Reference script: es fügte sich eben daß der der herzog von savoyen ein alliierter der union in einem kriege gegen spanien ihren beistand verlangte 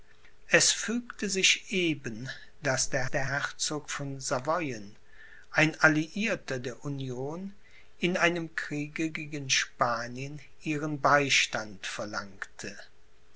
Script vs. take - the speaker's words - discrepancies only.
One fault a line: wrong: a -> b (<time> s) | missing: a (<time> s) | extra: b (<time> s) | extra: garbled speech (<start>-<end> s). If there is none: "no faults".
no faults